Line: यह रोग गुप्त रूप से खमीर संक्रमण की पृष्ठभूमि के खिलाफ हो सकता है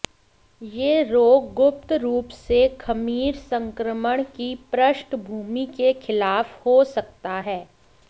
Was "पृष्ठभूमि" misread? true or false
false